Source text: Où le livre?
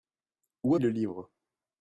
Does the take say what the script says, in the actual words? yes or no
yes